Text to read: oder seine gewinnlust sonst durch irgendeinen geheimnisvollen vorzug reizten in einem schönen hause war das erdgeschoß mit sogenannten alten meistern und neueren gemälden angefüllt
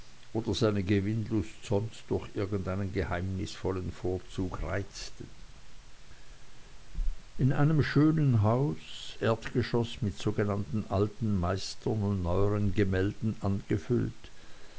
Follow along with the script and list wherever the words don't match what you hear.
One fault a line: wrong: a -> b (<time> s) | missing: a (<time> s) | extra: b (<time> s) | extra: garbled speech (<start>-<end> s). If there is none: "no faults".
missing: war das (8.8 s)